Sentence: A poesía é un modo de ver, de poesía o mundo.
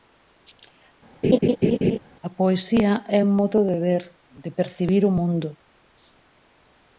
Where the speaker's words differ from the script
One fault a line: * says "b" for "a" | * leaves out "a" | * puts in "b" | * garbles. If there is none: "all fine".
* says "percibir" for "poesía"